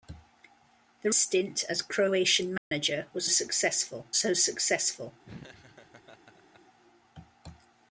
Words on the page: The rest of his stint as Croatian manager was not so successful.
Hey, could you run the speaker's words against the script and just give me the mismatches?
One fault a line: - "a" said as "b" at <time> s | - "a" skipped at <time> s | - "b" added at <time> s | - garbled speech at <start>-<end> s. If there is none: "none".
- "rest of his" skipped at 1.1 s
- "not" said as "successful" at 3.3 s